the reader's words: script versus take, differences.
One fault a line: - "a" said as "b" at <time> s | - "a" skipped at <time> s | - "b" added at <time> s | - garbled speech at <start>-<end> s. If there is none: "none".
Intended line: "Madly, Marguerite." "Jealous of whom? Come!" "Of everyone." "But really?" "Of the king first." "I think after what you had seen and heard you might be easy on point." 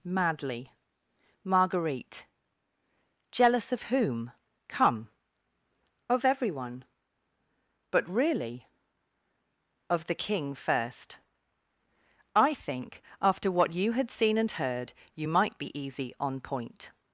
none